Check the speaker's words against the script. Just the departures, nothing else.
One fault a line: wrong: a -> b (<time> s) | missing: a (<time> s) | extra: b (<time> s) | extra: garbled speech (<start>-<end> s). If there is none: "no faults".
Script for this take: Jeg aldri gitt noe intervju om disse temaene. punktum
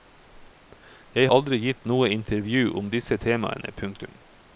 no faults